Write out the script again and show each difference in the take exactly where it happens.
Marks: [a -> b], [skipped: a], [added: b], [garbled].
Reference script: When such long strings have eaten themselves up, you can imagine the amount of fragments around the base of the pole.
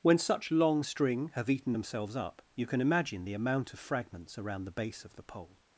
When such long [strings -> string] have eaten themselves up, you can imagine the amount of fragments around the base of the pole.